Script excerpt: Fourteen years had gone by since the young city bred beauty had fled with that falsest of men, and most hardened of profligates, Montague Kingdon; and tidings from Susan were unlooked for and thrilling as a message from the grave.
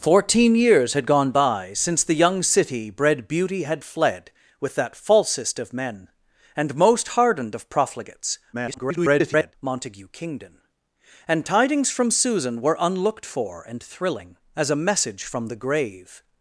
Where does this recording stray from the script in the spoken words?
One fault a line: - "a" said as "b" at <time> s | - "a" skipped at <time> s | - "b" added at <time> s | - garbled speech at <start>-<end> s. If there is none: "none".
- garbled speech at 8.5-9.5 s